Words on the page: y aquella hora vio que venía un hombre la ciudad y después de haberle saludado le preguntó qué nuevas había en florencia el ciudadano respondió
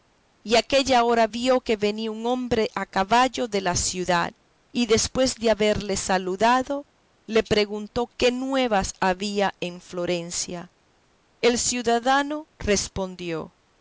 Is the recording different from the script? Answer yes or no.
yes